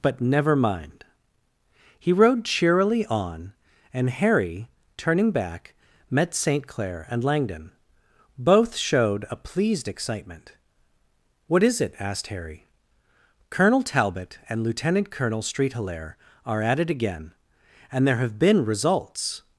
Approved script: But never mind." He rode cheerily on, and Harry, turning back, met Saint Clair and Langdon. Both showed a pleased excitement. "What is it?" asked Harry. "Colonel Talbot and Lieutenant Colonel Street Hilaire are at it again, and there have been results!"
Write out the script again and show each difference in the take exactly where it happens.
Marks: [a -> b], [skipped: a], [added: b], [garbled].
But never mind." He rode cheerily on, and Harry, turning back, met Saint Clair and Langdon. Both showed a pleased excitement. "What is it?" asked Harry. "Colonel Talbot and Lieutenant Colonel Street Hilaire are at it again, and there have been results!"